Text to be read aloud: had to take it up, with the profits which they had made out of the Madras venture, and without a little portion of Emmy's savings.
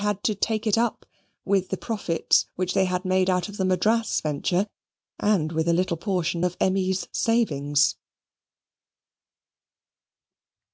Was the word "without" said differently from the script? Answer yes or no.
yes